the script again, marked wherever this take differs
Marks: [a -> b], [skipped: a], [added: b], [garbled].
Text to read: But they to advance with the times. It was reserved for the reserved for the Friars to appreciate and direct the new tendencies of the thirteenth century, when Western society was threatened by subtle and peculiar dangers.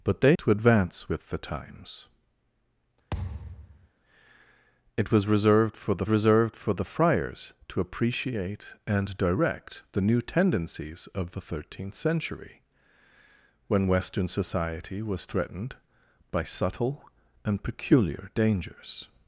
But they to advance with the times. It was reserved for the reserved for the Friars to appreciate and direct the new tendencies of the thirteenth century, when Western society was threatened by subtle and peculiar dangers.